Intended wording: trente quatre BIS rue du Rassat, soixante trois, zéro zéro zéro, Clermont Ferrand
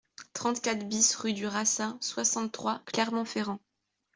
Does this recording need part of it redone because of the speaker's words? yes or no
yes